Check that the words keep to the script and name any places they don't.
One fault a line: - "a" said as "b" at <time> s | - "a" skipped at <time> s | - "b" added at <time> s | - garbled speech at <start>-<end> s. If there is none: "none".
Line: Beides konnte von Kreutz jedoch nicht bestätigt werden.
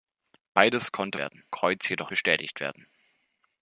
- "von" said as "werden" at 1.2 s
- "nicht" skipped at 2.1 s